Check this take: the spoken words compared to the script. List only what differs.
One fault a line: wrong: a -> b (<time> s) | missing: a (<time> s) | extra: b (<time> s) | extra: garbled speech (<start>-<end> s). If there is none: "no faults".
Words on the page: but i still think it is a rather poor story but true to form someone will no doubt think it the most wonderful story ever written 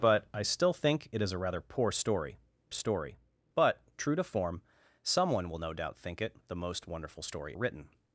extra: story (2.7 s)
missing: ever (7.6 s)